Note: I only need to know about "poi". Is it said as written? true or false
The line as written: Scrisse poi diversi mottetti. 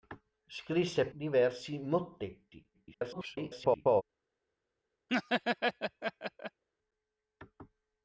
false